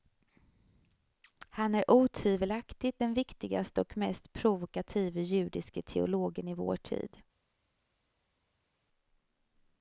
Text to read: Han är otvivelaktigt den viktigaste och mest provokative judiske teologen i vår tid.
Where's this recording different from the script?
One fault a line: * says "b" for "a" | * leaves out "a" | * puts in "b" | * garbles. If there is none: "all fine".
all fine